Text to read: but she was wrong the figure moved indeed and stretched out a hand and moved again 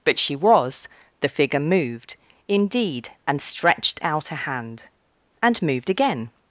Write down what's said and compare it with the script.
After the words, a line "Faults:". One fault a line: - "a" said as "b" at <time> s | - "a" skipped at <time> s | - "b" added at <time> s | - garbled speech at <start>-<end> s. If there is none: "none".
but she was the figure moved indeed and stretched out a hand and moved again
Faults:
- "wrong" skipped at 0.9 s